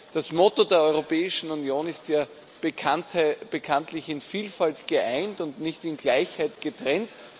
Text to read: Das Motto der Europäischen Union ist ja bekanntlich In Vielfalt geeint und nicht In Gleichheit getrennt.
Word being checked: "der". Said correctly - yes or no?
yes